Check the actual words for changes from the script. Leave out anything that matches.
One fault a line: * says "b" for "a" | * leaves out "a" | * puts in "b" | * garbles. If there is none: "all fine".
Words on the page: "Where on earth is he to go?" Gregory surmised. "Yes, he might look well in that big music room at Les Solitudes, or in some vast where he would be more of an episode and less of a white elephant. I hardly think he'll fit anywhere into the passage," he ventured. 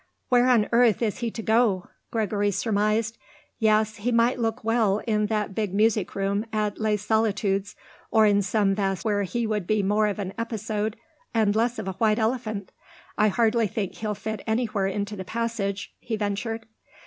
all fine